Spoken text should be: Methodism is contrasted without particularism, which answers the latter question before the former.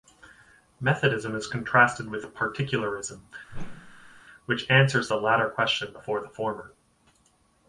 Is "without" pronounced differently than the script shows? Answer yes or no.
yes